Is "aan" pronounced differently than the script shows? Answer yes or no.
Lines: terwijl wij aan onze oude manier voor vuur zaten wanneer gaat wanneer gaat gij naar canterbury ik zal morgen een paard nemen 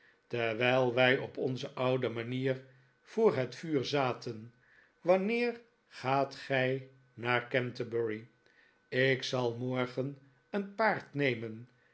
yes